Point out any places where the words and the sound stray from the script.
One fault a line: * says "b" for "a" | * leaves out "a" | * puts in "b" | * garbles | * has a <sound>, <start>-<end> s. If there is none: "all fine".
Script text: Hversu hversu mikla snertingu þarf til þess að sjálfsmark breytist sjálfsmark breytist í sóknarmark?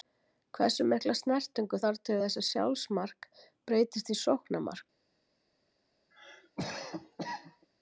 * leaves out "hversu"
* leaves out "sjálfsmark breytist"
* has a cough, 6.1-7.7 s